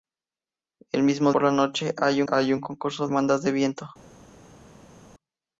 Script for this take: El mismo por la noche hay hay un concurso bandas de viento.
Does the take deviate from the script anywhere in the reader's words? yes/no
no